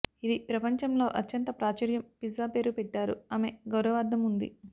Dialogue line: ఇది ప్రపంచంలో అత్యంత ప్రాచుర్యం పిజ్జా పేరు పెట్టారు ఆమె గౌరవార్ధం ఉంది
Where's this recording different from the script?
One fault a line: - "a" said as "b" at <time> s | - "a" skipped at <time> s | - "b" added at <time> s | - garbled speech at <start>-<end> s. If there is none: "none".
none